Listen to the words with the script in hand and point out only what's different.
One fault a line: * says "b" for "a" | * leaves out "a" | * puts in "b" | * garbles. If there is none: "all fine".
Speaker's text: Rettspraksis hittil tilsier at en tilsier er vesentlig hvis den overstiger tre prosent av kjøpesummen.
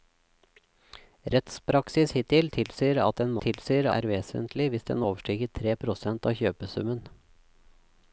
all fine